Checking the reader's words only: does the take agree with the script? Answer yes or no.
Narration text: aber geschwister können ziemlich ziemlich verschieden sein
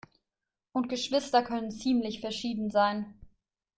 no